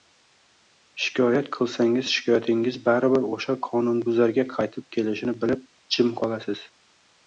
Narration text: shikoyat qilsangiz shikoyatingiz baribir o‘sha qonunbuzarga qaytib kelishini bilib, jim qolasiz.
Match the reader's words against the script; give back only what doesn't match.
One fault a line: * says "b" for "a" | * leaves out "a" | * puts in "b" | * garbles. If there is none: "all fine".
all fine